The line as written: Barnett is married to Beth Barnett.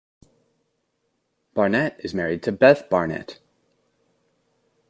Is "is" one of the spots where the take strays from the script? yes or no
no